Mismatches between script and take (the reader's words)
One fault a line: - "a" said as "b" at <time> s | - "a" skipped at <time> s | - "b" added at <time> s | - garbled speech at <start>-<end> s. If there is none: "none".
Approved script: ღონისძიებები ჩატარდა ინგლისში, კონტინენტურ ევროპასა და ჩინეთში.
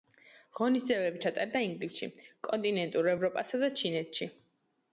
none